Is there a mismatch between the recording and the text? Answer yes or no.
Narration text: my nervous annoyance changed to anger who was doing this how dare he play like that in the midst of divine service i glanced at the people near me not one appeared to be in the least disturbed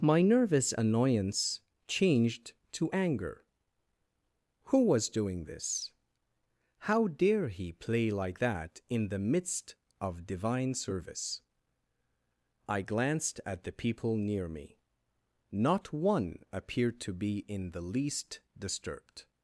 no